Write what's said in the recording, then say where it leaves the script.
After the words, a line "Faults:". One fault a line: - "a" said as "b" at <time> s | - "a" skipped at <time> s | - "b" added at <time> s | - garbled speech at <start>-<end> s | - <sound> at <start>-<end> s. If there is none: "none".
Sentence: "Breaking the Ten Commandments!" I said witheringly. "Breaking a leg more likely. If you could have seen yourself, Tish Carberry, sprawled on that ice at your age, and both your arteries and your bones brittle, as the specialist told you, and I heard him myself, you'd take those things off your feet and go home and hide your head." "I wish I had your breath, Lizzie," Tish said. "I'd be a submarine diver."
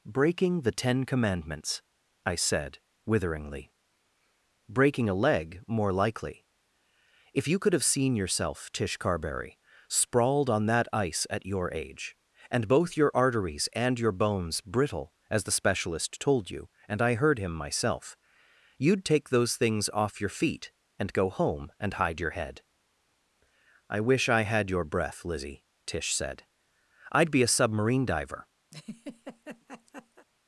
"Breaking the Ten Commandments!" I said witheringly. "Breaking a leg more likely. If you could have seen yourself, Tish Carberry, sprawled on that ice at your age, and both your arteries and your bones brittle, as the specialist told you, and I heard him myself, you'd take those things off your feet and go home and hide your head." "I wish I had your breath, Lizzie," Tish said. "I'd be a submarine diver."
Faults:
- laugh at 28.7-30.3 s